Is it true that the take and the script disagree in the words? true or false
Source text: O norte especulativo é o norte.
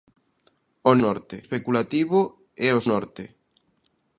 false